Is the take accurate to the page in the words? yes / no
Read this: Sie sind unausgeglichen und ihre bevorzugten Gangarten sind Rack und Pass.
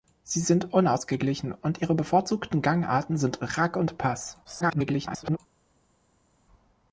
no